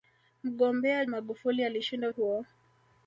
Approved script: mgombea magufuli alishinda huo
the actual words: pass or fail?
pass